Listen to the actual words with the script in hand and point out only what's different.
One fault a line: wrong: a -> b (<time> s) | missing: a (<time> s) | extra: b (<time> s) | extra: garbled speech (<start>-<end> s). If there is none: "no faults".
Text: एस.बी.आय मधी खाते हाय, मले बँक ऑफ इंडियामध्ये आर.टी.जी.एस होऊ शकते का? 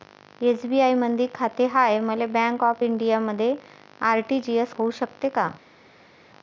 no faults